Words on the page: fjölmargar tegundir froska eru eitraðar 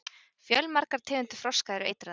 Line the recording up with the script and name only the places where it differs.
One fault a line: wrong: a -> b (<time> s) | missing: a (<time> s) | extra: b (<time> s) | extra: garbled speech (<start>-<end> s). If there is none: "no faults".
no faults